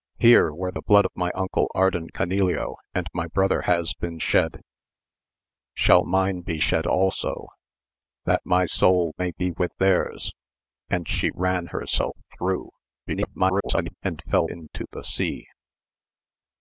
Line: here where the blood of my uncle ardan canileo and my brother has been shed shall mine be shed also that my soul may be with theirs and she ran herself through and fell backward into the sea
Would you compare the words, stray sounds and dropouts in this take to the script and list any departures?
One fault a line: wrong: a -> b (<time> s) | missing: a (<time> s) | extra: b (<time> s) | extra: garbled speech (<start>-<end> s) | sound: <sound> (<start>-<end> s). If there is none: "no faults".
extra: garbled speech (13.1-13.9 s)
missing: backward (14.5 s)